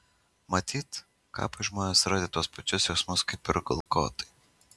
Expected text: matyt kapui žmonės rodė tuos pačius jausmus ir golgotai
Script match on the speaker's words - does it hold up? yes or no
no